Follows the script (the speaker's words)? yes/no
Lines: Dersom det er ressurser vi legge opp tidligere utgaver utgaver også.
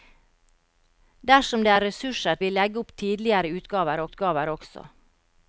yes